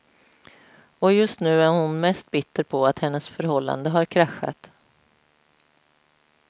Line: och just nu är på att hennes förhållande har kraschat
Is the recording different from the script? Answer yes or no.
yes